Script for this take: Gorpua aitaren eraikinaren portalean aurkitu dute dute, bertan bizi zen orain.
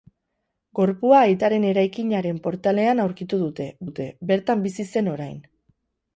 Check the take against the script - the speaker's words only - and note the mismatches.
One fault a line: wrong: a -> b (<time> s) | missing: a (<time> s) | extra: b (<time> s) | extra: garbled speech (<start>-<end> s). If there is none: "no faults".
no faults